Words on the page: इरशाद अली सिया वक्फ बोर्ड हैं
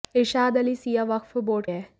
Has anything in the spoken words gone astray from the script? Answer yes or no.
no